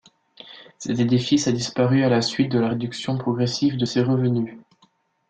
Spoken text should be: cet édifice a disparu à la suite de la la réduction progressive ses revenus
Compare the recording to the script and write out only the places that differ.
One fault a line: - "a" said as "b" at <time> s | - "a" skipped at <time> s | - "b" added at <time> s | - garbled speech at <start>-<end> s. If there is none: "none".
- "la" skipped at 2.7 s
- "de" added at 3.7 s